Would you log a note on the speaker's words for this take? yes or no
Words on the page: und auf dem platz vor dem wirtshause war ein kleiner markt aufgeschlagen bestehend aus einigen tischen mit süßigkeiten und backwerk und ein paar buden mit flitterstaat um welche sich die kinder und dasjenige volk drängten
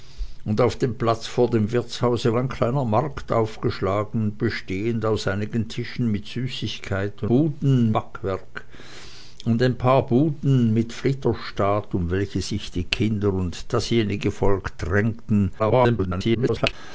yes